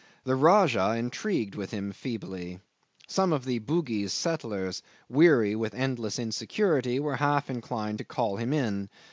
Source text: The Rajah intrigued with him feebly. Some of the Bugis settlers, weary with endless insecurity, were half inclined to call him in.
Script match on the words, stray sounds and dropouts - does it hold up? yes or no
yes